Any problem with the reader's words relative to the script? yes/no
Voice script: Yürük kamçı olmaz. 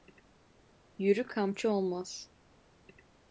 no